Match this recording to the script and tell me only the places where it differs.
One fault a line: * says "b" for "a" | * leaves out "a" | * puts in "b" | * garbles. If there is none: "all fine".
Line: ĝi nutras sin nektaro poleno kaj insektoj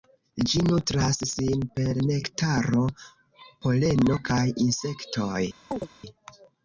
* puts in "per"